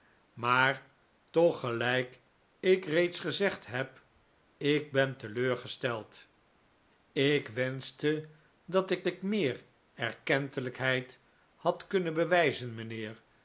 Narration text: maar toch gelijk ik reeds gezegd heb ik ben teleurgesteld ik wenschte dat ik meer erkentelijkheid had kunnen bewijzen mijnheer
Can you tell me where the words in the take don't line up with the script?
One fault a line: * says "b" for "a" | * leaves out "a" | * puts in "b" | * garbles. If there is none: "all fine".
* puts in "ik"